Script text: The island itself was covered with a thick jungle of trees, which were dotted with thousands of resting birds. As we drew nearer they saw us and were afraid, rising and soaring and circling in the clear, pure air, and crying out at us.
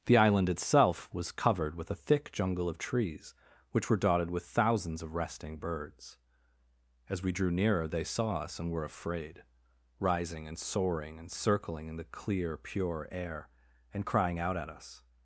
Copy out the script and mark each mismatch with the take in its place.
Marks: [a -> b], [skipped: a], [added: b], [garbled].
The island itself was covered with a thick jungle of trees, which were dotted with thousands of resting birds. As we drew nearer they saw us and were afraid, rising and soaring and circling in the clear, pure air, and crying out at us.